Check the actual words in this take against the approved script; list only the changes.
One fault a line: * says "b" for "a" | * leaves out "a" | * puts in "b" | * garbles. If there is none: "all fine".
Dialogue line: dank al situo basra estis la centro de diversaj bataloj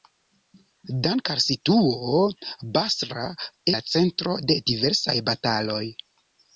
* leaves out "estis"